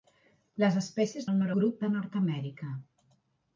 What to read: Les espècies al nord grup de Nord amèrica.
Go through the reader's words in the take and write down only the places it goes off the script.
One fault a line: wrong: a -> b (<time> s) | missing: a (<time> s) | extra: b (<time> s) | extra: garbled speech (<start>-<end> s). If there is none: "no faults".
no faults